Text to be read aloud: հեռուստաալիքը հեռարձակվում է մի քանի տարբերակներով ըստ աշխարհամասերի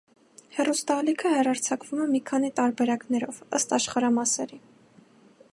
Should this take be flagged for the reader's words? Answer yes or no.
no